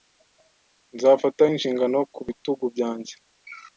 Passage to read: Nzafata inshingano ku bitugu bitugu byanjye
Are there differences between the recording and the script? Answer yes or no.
yes